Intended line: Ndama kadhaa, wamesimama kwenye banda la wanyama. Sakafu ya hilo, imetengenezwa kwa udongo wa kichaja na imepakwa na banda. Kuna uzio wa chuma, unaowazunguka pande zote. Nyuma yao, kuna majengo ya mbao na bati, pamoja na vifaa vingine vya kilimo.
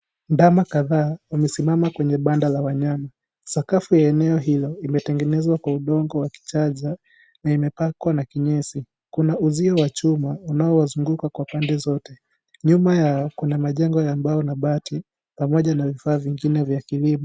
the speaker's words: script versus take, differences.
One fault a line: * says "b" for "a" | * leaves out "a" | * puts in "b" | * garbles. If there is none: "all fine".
* puts in "eneo"
* says "kinyesi" for "banda"
* puts in "kwa"